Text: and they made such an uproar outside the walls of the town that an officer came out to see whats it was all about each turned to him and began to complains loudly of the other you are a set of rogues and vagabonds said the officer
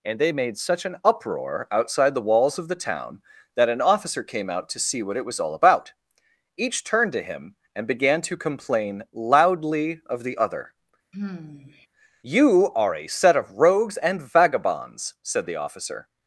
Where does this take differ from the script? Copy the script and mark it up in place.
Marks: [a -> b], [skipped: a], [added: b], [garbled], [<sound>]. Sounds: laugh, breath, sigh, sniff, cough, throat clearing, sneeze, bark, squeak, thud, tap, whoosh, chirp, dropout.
and they made such an uproar outside the walls of the town that an officer came out to see [whats -> what] it was all about each turned to him and began to [complains -> complain] loudly of the other [sigh] you are a set of rogues and vagabonds said the officer